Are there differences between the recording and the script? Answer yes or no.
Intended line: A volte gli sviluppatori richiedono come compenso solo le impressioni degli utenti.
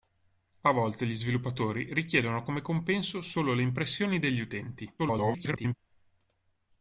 yes